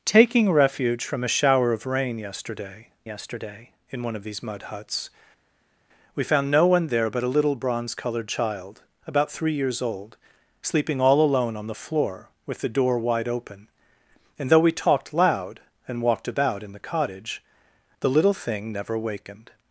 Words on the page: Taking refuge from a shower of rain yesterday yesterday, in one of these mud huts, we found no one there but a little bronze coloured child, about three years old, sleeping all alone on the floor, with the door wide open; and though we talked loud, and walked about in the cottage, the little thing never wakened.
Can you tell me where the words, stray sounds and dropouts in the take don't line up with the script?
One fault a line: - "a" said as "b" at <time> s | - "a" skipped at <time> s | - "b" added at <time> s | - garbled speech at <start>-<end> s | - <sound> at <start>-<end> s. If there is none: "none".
none